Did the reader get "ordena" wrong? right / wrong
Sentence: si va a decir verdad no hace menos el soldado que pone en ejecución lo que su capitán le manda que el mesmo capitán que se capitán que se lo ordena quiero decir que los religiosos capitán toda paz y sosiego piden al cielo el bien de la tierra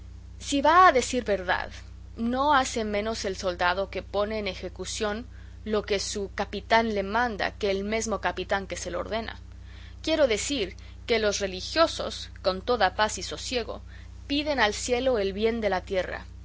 right